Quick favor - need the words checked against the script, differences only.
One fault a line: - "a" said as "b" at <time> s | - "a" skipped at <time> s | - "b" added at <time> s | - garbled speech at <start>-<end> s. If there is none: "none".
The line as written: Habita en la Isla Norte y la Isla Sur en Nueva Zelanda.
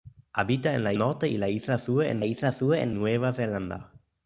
- "Isla" skipped at 0.9 s
- "Isla Sur en" added at 2.2 s